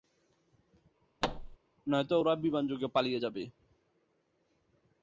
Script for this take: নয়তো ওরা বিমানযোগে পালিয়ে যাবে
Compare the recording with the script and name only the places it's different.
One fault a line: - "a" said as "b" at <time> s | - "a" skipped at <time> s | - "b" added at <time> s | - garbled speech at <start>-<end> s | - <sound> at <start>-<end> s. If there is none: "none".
- thud at 1.2-1.6 s